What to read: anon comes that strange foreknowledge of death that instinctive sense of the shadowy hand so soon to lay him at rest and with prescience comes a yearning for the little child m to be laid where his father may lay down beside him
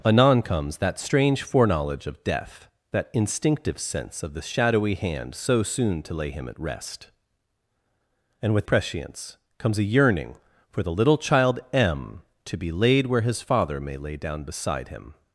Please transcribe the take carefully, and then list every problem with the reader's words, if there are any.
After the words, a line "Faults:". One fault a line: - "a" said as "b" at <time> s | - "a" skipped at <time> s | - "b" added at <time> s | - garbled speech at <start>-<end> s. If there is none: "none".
anon comes that strange foreknowledge of death that instinctive sense of the shadowy hand so soon to lay him at rest and with prescience comes a yearning for the little child m to be laid where his father may lay down beside him
Faults:
none